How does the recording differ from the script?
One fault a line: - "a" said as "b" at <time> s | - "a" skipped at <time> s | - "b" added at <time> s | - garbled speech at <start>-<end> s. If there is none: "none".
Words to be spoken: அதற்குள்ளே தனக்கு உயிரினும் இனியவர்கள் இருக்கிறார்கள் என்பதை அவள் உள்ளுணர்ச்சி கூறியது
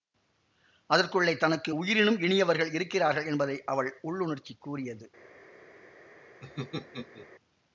none